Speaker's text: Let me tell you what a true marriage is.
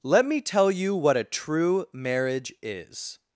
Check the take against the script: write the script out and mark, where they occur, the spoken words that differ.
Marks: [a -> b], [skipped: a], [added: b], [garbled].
Let me tell you what a true marriage is.